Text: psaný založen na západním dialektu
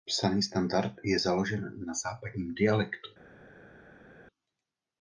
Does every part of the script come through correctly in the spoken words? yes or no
no